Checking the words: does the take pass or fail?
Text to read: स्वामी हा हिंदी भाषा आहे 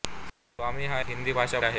pass